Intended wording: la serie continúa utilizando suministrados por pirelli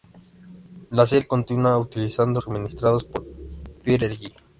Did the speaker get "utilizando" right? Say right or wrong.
right